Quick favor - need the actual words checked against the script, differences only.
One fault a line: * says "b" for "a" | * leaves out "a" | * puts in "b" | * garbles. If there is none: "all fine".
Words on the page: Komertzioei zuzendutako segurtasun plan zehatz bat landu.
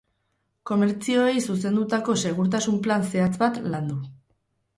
all fine